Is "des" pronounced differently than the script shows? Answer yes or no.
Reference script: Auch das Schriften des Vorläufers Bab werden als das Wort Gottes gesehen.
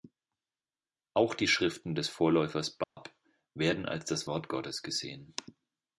no